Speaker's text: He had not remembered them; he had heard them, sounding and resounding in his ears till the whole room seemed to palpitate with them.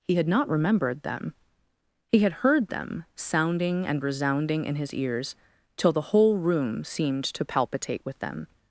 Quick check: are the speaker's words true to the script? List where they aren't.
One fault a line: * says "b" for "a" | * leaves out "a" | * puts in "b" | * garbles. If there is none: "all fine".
all fine